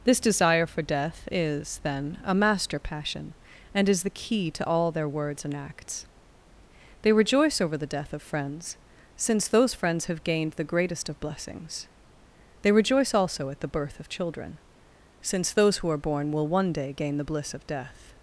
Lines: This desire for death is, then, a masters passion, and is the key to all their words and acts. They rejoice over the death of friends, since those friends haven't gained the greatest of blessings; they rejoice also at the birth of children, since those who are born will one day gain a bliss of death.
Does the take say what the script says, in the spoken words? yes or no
no